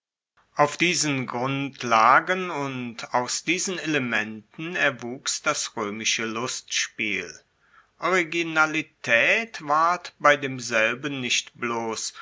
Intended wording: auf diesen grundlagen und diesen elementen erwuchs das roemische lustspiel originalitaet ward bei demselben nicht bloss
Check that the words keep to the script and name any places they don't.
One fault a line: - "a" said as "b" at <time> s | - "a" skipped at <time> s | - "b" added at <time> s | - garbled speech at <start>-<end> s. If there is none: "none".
- "aus" added at 3.1 s